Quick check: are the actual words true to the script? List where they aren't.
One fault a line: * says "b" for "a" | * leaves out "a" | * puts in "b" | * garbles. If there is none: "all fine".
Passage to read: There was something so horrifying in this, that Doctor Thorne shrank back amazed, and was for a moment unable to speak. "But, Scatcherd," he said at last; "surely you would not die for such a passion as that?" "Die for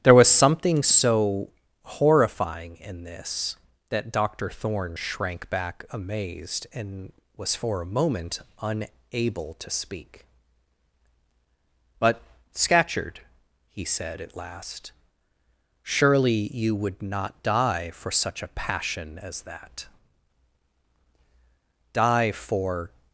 all fine